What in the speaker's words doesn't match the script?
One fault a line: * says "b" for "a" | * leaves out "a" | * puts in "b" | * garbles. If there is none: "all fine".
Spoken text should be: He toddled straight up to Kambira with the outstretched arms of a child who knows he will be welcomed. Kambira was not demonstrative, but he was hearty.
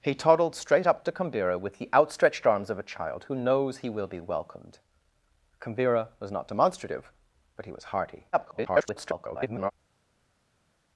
* garbles